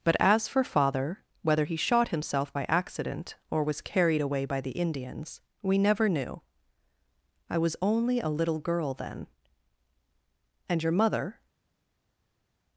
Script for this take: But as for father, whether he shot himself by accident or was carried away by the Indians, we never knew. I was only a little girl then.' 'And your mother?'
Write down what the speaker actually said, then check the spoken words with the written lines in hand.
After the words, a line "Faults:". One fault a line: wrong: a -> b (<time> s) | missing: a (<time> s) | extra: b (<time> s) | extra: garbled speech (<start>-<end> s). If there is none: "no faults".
But as for father, whether he shot himself by accident or was carried away by the Indians, we never knew. I was only a little girl then.' 'And your mother?'
Faults:
no faults